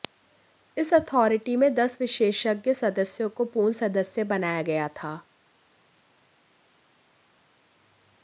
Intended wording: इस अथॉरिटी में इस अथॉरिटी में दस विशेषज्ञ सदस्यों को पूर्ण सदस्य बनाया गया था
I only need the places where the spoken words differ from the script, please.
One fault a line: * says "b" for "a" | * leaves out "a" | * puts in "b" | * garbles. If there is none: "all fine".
* leaves out "इस अथॉरिटी में"